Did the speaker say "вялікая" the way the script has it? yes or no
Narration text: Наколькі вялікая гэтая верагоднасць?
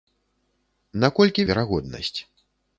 no